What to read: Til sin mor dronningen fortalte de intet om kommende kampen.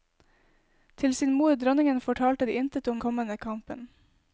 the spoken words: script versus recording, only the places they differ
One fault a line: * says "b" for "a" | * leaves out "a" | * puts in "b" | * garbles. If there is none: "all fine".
all fine